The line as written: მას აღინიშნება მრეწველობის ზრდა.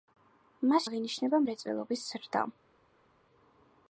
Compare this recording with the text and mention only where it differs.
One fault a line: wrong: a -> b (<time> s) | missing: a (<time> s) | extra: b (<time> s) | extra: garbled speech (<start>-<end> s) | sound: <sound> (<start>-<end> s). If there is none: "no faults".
no faults